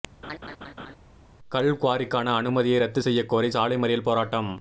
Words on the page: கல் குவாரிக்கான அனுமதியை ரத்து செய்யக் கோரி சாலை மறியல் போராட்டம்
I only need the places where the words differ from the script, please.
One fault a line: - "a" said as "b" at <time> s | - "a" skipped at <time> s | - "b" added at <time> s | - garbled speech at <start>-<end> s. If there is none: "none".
none